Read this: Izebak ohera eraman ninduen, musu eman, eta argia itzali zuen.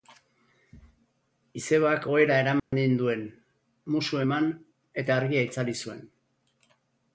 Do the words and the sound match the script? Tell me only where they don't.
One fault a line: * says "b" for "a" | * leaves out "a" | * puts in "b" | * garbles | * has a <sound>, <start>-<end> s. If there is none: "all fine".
* has a dropout, 2.6-2.7 s